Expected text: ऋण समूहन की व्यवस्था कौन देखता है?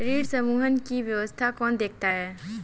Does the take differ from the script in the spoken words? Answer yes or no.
no